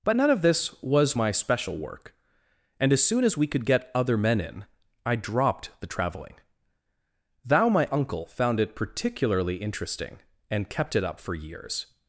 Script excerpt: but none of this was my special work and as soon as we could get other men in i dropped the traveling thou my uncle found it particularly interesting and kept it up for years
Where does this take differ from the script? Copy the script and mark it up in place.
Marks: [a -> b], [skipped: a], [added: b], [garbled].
but none of this was my special work and as soon as we could get other men in i dropped the traveling thou my uncle found it particularly interesting and kept it up for years